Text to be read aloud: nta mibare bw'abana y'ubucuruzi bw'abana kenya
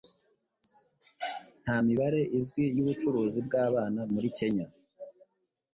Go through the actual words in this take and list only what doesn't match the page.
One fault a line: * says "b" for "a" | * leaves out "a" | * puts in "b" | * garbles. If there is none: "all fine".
* says "izwi" for "bw'abana"
* puts in "muri"